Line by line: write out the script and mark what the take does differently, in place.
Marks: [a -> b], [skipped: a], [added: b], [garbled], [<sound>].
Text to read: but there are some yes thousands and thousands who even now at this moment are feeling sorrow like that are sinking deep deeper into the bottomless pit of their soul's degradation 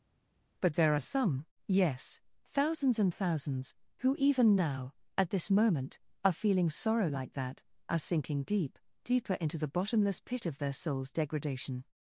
but there are some yes thousands and thousands who even now at this moment are feeling sorrow like that are sinking deep deeper into the bottomless pit of their soul's degradation